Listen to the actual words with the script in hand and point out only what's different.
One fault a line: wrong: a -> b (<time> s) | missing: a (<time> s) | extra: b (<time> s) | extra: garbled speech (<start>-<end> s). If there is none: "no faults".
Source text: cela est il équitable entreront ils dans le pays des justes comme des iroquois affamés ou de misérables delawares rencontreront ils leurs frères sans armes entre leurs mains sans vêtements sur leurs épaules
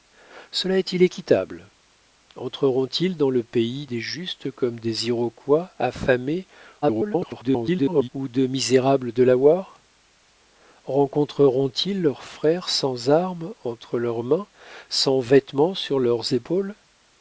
extra: garbled speech (6.8-8.1 s)